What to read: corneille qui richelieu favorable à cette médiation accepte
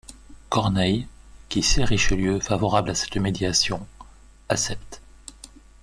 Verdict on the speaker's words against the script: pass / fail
fail